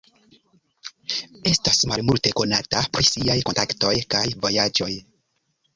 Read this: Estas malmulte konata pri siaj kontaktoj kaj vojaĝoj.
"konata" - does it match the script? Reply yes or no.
yes